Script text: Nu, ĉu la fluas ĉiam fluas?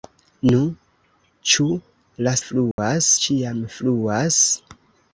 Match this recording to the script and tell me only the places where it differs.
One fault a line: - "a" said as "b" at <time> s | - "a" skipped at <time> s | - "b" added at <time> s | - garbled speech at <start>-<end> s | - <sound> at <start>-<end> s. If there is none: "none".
- dropout at 2.7-2.8 s